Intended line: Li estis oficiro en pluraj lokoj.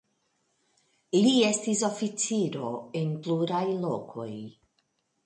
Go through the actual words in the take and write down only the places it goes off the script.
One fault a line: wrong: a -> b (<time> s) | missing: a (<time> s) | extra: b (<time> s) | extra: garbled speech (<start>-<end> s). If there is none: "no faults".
no faults